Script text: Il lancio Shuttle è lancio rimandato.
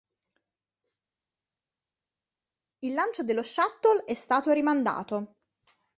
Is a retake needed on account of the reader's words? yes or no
yes